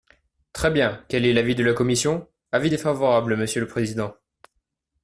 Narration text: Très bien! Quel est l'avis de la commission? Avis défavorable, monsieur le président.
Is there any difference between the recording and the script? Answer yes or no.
no